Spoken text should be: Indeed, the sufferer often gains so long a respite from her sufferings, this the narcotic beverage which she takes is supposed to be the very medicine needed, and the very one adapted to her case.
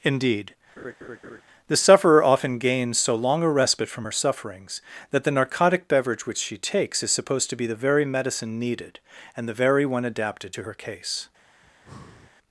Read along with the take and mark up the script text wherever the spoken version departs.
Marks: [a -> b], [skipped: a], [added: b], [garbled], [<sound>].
Indeed, [laugh] the sufferer often gains so long a respite from her sufferings, [this -> that] the narcotic beverage which she takes is supposed to be the very medicine needed, and the very one adapted to her case. [breath]